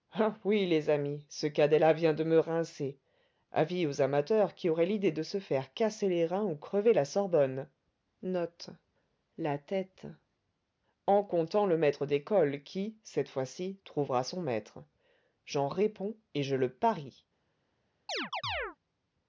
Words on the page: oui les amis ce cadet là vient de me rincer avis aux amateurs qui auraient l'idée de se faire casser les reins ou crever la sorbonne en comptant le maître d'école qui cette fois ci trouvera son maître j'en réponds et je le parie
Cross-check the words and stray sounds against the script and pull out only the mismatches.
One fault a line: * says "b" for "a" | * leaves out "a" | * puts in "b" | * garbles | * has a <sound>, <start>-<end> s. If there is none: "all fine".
* has a chirp, 18.1-18.8 s